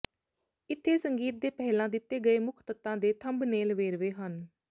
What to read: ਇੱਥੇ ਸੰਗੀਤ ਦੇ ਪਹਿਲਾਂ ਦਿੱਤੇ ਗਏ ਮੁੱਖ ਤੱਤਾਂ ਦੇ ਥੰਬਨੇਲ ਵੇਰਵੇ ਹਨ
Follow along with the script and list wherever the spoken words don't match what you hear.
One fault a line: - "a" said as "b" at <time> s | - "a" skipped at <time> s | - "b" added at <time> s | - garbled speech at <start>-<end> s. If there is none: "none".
none